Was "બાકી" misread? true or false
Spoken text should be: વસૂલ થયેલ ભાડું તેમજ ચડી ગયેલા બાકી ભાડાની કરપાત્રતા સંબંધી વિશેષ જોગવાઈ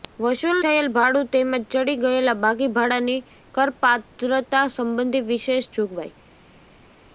false